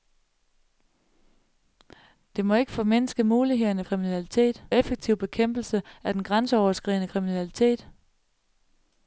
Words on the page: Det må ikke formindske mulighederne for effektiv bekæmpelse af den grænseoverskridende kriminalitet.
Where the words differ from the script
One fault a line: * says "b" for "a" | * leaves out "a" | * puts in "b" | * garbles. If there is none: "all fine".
* says "kriminalitet" for "for"